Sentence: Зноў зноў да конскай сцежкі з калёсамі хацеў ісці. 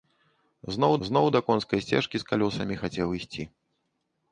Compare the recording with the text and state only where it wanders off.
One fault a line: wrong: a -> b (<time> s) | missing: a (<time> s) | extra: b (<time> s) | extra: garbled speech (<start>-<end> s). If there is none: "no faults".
no faults